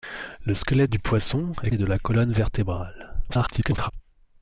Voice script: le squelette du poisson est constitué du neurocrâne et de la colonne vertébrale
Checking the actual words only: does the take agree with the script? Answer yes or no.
no